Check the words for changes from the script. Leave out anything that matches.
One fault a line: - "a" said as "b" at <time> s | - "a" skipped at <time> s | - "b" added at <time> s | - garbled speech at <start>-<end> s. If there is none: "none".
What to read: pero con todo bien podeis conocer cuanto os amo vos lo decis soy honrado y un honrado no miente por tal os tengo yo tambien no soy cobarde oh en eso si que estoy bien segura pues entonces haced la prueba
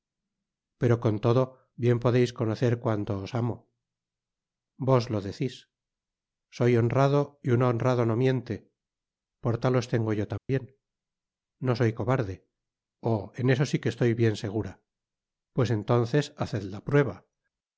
none